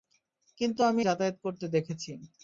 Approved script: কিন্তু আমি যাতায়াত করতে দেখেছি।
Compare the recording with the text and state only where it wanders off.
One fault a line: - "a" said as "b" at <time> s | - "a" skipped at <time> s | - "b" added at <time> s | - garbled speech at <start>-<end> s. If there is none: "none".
none